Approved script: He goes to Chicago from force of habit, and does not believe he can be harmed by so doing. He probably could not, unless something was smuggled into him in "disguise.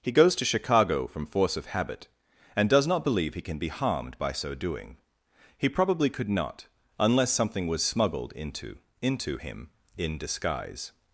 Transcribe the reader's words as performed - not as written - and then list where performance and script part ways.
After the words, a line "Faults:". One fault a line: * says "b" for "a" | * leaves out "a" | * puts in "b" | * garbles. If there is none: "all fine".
He goes to Chicago from force of habit, and does not believe he can be harmed by so doing. He probably could not, unless something was smuggled into into him in "disguise.
Faults:
* puts in "into"